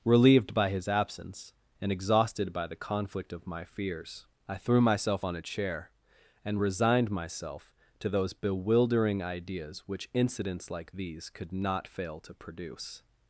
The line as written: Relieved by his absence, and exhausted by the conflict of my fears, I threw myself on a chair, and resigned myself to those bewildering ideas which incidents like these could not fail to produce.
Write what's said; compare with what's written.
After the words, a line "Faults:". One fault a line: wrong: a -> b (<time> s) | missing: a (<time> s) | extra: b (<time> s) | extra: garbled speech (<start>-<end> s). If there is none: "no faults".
Relieved by his absence, and exhausted by the conflict of my fears, I threw myself on a chair, and resigned myself to those bewildering ideas which incidents like these could not fail to produce.
Faults:
no faults